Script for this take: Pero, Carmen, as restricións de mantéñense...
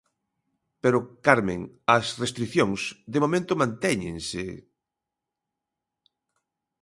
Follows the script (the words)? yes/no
no